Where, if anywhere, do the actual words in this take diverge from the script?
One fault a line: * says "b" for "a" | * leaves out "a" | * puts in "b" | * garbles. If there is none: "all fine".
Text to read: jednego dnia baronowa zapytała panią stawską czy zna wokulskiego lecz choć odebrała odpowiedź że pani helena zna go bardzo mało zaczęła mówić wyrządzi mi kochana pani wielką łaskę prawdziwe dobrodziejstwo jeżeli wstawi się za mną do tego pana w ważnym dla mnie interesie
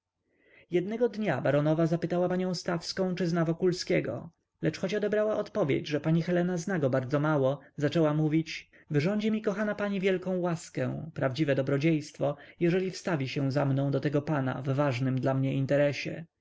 all fine